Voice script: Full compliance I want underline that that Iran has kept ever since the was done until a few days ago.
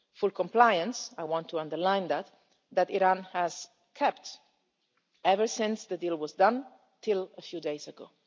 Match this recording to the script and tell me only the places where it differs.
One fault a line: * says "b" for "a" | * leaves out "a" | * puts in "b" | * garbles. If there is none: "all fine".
* puts in "to"
* puts in "deal"